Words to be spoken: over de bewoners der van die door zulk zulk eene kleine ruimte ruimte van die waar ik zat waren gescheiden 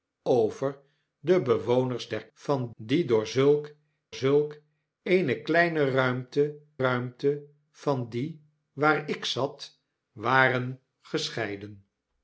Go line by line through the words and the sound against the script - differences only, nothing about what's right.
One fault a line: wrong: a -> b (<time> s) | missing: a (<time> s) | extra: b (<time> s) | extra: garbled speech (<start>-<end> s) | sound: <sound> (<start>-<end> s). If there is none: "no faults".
no faults